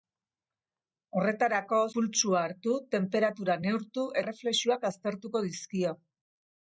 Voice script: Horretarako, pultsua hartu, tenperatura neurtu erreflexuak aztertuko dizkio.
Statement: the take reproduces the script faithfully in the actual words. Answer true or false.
true